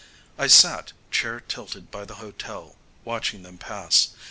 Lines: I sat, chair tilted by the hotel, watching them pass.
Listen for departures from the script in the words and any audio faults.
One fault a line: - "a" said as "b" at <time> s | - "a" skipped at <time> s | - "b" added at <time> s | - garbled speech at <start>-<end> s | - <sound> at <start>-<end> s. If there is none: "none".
none